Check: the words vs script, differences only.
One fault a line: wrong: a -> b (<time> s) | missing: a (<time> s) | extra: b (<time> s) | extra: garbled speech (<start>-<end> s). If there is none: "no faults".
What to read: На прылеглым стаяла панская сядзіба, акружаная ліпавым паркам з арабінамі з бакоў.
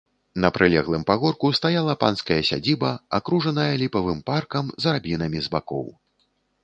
extra: пагорку (1.1 s)